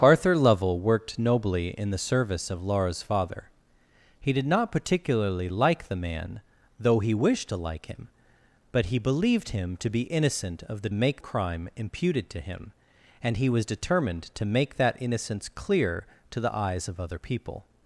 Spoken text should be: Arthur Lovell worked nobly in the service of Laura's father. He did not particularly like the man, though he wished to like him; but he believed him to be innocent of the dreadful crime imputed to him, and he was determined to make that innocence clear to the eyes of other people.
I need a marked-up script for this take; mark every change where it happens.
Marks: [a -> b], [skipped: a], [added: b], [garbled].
Arthur Lovell worked nobly in the service of Laura's father. He did not particularly like the man, though he wished to like him; but he believed him to be innocent of the [dreadful -> make] crime imputed to him, and he was determined to make that innocence clear to the eyes of other people.